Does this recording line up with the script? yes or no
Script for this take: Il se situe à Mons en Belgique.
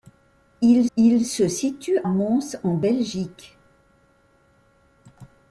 no